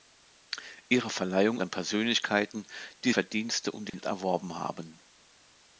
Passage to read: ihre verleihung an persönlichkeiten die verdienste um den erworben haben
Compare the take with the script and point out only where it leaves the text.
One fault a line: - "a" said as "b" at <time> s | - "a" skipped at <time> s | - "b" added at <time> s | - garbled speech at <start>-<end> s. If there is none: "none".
none